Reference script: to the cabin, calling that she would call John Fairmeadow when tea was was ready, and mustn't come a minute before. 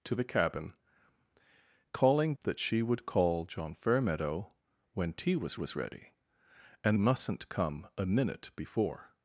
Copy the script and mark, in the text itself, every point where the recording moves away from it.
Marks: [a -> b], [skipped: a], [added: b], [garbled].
to the cabin, calling that she would call John Fairmeadow when tea was was ready, and mustn't come a minute before.